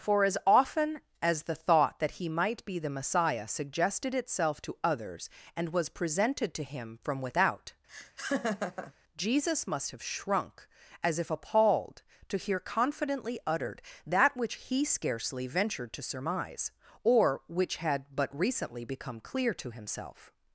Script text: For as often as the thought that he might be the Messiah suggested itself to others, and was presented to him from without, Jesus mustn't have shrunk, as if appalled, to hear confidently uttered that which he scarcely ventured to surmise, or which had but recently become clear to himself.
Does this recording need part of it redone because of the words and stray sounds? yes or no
yes